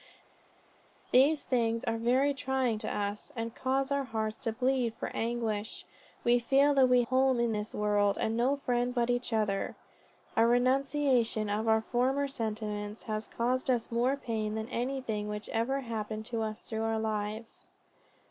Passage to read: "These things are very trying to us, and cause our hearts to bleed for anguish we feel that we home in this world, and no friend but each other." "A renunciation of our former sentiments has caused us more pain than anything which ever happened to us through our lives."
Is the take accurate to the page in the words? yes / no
yes